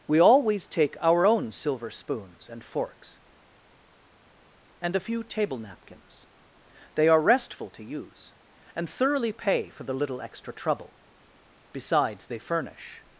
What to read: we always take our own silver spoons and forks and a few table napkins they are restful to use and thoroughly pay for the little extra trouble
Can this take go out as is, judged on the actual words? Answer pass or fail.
fail